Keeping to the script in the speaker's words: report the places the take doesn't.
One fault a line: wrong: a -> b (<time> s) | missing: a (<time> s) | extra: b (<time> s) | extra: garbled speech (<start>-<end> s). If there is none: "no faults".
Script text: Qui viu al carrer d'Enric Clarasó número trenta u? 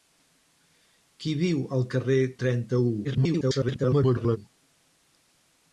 missing: d'Enric Clarasó número (2.2 s)
extra: garbled speech (3.0-4.4 s)